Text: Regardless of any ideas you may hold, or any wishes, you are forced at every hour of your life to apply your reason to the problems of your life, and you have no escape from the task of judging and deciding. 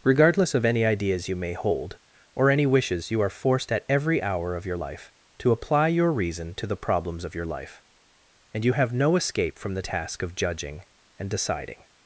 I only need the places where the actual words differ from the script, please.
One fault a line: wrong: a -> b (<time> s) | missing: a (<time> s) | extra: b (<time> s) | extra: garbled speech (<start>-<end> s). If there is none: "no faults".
no faults